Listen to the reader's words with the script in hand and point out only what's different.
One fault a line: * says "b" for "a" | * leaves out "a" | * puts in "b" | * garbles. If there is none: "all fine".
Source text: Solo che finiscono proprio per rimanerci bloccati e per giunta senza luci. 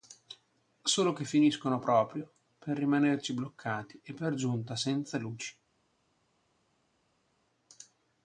all fine